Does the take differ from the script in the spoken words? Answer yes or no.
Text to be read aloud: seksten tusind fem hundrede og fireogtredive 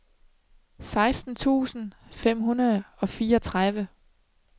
no